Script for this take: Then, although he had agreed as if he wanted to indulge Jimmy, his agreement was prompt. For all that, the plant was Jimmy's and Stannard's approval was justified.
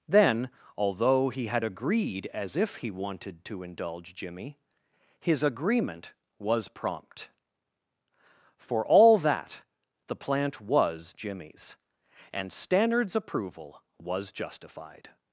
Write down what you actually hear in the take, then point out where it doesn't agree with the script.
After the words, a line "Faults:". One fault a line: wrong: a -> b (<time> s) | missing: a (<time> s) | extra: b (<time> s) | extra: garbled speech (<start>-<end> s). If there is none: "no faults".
Then, although he had agreed as if he wanted to indulge Jimmy, his agreement was prompt. For all that, the plant was Jimmy's and Stannard's approval was justified.
Faults:
no faults